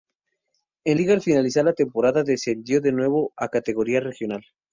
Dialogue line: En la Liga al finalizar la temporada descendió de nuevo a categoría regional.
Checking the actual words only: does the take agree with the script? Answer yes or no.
no